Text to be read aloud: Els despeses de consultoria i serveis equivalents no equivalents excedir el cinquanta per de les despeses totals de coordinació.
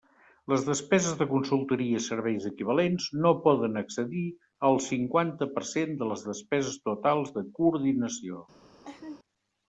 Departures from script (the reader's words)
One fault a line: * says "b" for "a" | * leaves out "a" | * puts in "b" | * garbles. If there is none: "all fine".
* says "Les" for "Els"
* says "poden" for "equivalents"
* puts in "cent"